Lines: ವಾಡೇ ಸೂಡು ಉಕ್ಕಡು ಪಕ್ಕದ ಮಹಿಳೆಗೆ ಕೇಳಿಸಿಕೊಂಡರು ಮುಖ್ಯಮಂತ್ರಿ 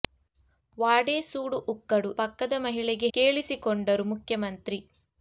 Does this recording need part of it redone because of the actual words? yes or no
no